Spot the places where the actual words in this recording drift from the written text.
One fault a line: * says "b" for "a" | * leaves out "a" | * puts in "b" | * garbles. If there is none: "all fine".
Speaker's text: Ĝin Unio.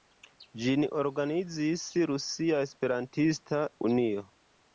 * puts in "organizis Rusia Esperantista"